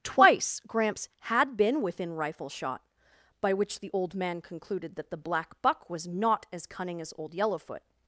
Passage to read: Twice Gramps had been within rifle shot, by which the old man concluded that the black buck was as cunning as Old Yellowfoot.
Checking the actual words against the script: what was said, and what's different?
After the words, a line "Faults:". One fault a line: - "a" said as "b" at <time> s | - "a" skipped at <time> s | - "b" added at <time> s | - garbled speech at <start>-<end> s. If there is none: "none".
Twice Gramps had been within rifle shot, by which the old man concluded that the black buck was not as cunning as Old Yellowfoot.
Faults:
- "not" added at 6.1 s